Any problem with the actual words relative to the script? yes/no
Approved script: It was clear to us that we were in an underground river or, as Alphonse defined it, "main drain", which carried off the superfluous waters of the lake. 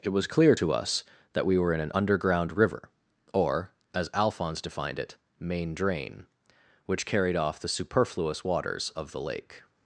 no